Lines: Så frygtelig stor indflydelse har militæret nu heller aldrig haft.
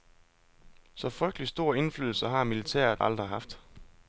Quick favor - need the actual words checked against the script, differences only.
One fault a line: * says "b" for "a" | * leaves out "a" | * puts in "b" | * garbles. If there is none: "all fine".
* leaves out "nu heller"